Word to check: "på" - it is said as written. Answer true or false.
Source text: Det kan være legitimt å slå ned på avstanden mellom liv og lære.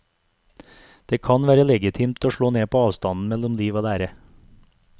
true